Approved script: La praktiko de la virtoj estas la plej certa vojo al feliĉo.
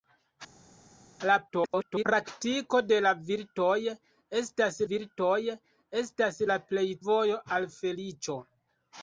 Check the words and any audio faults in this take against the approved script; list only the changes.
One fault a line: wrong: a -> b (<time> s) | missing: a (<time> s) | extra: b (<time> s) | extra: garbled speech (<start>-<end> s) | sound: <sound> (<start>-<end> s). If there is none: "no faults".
extra: garbled speech (1.5-2.0 s)
extra: virtoj estas (4.9 s)
missing: certa (6.9 s)